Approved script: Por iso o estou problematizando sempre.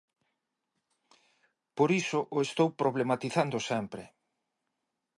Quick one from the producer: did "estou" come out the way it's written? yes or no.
yes